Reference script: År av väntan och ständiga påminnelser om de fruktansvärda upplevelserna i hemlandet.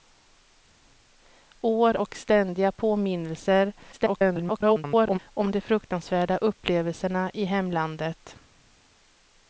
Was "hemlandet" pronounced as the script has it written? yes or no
yes